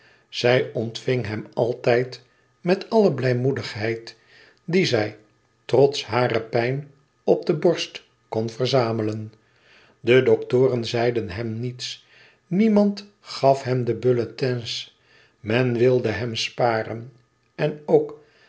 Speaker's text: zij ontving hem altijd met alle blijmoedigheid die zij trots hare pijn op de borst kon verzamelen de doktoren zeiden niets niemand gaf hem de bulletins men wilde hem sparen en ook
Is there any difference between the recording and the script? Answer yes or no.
yes